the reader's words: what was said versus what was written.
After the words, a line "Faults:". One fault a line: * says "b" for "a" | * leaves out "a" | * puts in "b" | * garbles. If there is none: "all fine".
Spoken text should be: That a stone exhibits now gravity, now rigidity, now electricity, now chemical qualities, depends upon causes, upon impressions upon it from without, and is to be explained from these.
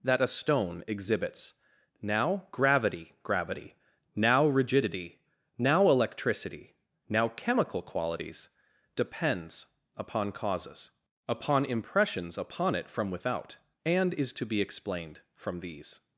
That a stone exhibits now gravity gravity, now rigidity, now electricity, now chemical qualities, depends upon causes, upon impressions upon it from without, and is to be explained from these.
Faults:
* puts in "gravity"